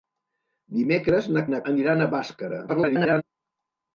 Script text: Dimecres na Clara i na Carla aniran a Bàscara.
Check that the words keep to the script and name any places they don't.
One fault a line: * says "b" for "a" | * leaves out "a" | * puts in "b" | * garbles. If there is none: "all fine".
* leaves out "Clara"
* leaves out "Carla"
* garbles